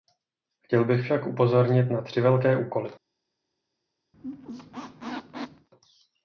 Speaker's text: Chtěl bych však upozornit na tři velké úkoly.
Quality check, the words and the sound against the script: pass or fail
fail